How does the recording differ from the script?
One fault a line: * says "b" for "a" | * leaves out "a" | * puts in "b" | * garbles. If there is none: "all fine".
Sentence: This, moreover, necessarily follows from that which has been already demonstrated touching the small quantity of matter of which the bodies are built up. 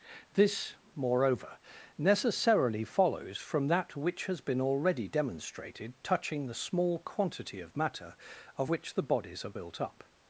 all fine